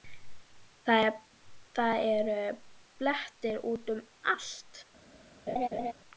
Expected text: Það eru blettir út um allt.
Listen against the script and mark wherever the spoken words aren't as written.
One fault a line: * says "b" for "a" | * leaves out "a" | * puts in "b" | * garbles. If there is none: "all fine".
all fine